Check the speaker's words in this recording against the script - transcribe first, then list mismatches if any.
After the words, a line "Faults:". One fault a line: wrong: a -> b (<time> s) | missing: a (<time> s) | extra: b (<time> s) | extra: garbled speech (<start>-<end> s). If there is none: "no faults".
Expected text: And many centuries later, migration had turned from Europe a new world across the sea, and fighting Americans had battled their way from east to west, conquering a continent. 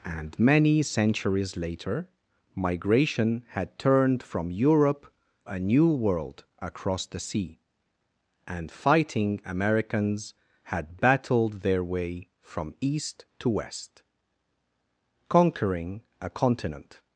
And many centuries later, migration had turned from Europe a new world across the sea, and fighting Americans had battled their way from east to west, conquering a continent.
Faults:
no faults